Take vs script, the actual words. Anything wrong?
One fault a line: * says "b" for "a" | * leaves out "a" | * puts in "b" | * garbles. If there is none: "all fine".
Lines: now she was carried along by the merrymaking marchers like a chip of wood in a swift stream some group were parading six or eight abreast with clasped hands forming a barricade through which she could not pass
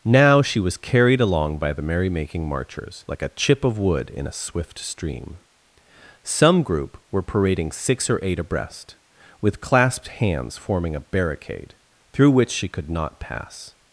all fine